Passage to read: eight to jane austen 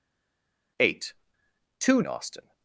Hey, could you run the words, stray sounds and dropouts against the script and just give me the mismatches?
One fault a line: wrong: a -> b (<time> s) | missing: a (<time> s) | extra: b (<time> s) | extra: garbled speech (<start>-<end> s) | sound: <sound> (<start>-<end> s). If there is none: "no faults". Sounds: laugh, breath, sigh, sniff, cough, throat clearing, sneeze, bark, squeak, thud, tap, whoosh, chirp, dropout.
missing: jane (2.0 s)